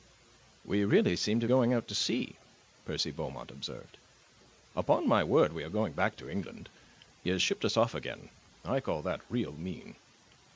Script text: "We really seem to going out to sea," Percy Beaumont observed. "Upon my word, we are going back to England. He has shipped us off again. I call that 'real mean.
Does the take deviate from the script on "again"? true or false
false